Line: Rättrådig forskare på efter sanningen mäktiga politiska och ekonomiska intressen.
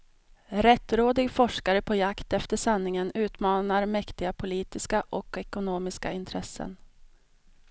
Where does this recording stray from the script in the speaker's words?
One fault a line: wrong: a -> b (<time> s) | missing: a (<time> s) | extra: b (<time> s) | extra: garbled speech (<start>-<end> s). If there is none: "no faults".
extra: jakt (1.9 s)
extra: utmanar (3.1 s)